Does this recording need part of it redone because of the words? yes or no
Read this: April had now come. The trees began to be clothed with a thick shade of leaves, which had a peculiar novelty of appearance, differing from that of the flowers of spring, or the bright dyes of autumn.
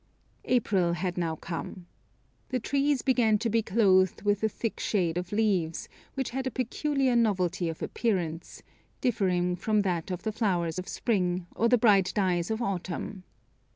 no